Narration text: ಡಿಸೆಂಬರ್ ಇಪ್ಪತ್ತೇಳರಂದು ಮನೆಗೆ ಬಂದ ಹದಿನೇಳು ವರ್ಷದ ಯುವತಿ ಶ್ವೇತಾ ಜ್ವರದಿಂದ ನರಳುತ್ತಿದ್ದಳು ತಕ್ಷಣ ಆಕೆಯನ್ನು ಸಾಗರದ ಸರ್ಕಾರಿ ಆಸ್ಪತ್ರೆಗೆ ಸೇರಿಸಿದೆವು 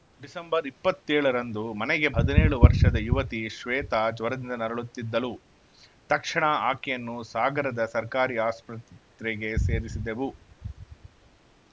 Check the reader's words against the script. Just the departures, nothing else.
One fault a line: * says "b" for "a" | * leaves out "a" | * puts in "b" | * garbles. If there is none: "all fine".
* leaves out "ಬಂದ"